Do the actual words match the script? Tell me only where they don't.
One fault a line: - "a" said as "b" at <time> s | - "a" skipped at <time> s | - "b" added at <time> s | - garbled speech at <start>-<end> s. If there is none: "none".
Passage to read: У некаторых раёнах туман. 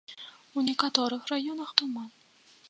none